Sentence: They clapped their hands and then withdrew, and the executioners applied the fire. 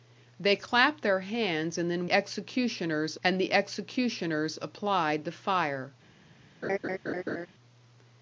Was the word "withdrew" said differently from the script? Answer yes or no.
yes